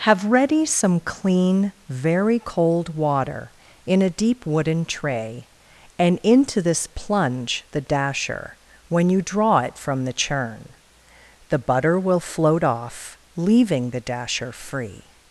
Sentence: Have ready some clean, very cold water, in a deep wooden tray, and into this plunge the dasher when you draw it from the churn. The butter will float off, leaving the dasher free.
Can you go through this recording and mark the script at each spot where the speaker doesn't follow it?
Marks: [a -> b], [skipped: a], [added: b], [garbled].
Have ready some clean, very cold water, in a deep wooden tray, and into this plunge the dasher when you draw it from the churn. The butter will float off, leaving the dasher free.